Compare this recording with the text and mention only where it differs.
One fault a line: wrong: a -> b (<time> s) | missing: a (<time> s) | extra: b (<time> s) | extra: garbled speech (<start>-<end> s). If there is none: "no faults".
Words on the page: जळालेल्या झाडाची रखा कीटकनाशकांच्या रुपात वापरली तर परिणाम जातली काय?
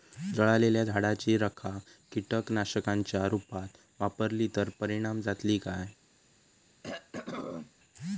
no faults